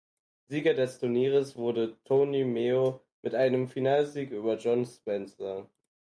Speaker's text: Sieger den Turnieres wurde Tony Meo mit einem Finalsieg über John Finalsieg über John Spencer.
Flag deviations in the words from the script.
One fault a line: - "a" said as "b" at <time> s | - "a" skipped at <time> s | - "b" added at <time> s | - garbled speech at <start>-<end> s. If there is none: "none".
- "den" said as "des" at 0.7 s
- "Finalsieg über John" skipped at 4.8 s